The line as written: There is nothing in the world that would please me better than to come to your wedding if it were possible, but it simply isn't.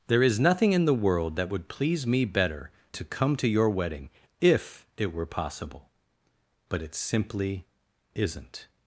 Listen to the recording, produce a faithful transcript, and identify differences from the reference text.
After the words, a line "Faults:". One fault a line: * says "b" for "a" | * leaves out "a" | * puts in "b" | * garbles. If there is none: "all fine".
There is nothing in the world that would please me better to come to your wedding if it were possible, but it simply isn't.
Faults:
* leaves out "than"